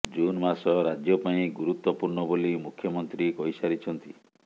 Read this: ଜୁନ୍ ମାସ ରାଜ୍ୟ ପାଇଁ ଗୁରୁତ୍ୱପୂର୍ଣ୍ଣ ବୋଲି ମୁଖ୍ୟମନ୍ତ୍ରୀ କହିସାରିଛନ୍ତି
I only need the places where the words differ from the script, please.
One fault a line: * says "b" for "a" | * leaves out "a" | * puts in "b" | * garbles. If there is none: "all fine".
all fine